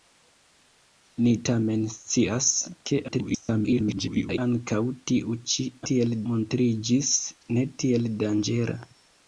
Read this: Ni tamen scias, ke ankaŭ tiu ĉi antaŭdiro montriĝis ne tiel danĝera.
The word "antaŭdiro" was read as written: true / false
false